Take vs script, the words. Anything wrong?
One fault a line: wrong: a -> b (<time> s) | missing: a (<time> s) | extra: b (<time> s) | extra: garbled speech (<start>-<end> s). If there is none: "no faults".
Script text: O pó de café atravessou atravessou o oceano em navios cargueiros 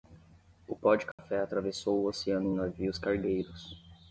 missing: atravessou (2.0 s)